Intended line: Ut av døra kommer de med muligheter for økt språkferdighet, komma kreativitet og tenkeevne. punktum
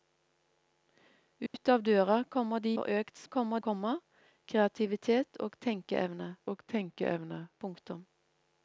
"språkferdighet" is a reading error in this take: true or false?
true